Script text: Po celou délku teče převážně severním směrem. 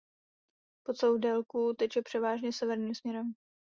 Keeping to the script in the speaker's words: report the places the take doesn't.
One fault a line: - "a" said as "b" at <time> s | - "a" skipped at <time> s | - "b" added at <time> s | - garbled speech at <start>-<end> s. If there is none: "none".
none